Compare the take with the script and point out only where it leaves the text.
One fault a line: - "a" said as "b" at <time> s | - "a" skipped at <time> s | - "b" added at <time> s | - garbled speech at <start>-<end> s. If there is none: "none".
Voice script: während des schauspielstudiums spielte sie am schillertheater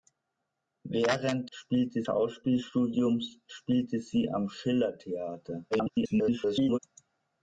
- "des" said as "spielte" at 1.5 s
- garbled speech at 5.7-6.8 s